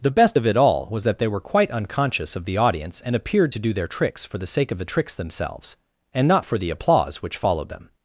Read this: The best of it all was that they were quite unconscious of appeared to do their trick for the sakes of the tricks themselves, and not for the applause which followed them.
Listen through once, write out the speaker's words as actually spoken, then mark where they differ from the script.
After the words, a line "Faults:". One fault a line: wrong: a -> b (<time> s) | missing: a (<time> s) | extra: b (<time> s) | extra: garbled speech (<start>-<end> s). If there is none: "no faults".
The best of it all was that they were quite unconscious of the audience and appeared to do their tricks for the sake of the tricks themselves, and not for the applause which followed them.
Faults:
extra: the audience and (2.4 s)
wrong: trick -> tricks (3.9 s)
wrong: sakes -> sake (4.5 s)